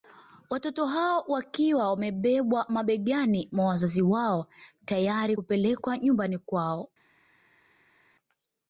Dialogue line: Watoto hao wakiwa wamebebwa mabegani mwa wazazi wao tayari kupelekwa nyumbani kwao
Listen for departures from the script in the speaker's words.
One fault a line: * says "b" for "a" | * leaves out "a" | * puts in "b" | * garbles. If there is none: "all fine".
all fine